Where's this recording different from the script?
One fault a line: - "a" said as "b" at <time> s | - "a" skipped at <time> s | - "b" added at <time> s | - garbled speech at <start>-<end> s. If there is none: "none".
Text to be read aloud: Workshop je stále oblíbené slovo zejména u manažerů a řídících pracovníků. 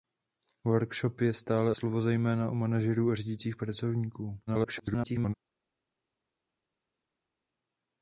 - "oblíbené" skipped at 1.7 s
- garbled speech at 4.5-5.3 s